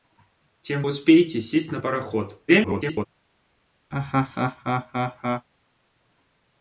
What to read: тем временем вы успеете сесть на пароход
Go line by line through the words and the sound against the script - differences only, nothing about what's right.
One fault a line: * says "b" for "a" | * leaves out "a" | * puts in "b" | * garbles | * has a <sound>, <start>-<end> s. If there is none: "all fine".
* leaves out "временем вы"
* garbles
* has a laugh, 3.9-5.5 s